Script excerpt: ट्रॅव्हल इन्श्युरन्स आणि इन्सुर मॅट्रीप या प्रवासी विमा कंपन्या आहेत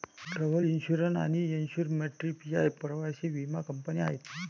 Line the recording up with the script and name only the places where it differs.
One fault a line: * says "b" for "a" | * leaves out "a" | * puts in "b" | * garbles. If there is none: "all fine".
all fine